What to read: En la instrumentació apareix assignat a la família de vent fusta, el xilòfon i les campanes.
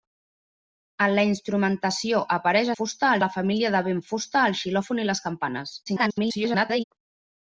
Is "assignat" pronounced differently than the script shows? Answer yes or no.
yes